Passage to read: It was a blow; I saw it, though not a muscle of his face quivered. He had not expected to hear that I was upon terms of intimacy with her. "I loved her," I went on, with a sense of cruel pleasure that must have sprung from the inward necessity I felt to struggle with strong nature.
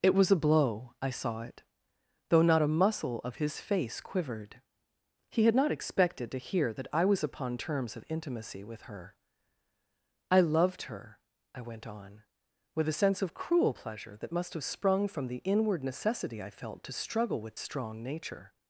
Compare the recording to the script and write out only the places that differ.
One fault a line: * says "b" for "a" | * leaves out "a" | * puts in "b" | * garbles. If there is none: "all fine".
all fine